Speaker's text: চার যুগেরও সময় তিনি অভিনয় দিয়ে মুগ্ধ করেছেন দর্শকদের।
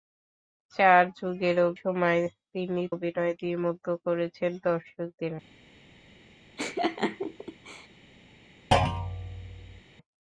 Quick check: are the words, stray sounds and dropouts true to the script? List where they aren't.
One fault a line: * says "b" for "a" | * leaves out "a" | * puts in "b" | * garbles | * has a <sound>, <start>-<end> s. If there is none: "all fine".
* has a laugh, 6.6-7.9 s
* has a thud, 8.7-9.8 s